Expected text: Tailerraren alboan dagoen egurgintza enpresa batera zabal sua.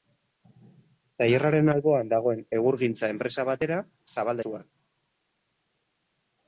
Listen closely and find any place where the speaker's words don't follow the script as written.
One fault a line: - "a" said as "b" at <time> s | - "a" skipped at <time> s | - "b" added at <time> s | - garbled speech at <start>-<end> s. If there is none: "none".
none